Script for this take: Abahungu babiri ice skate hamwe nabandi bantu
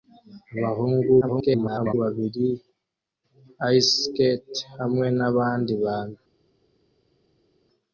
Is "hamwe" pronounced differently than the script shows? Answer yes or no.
no